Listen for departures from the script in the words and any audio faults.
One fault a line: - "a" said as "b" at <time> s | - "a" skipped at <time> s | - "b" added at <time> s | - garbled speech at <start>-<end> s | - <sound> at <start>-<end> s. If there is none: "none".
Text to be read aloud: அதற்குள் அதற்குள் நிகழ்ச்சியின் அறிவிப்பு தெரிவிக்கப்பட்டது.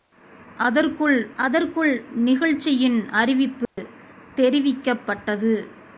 - dropout at 3.6-3.8 s